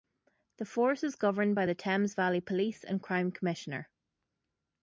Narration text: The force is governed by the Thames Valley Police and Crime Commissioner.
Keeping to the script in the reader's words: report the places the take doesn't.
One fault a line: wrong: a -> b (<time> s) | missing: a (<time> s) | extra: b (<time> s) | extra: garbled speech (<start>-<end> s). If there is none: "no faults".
no faults